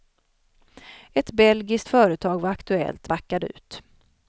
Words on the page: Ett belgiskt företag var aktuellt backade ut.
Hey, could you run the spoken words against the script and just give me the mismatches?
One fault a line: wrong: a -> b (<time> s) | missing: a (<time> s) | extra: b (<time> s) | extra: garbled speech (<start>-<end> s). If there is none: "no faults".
no faults